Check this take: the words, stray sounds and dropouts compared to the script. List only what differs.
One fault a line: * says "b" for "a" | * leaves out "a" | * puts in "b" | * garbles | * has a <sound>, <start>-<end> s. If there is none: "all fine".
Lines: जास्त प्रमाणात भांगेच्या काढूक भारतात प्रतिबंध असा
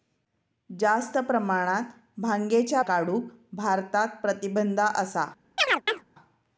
* has a chirp, 5.6-6.1 s